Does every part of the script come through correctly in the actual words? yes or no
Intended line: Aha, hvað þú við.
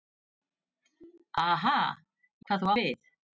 yes